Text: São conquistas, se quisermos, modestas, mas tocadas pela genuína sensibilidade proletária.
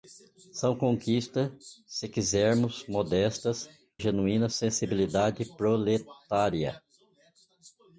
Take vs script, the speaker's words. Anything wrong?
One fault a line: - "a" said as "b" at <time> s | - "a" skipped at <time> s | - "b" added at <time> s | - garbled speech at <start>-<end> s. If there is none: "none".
- "mas tocadas pela" skipped at 3.7 s